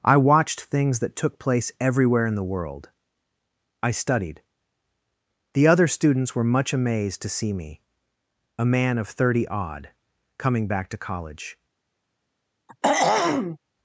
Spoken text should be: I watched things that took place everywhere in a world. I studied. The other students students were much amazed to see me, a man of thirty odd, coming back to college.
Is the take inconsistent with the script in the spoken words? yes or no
yes